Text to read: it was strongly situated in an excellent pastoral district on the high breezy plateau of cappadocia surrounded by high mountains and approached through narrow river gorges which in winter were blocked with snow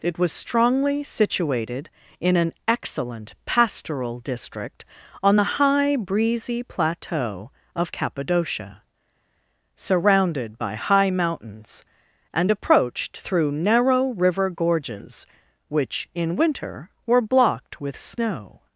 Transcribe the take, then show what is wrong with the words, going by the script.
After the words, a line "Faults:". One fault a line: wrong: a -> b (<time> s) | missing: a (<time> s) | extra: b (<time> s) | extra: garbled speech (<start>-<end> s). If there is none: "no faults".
it was strongly situated in an excellent pastoral district on the high breezy plateau of cappadocia surrounded by high mountains and approached through narrow river gorges which in winter were blocked with snow
Faults:
no faults